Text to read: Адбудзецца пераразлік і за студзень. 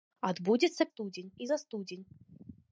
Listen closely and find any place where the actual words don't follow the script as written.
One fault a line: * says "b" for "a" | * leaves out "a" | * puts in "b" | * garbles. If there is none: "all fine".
* says "студзень" for "пераразлік"